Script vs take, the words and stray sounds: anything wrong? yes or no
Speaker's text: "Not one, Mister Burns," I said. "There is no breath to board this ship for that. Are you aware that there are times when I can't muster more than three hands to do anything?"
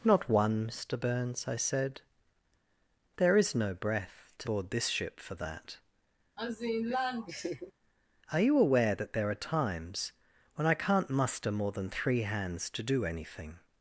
yes